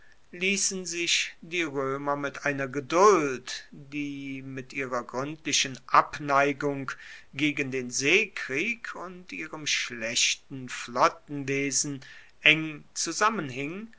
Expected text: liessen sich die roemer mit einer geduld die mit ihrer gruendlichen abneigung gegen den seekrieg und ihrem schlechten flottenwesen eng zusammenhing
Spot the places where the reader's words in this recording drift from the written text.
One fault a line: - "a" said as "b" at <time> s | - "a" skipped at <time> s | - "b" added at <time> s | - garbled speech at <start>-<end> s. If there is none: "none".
none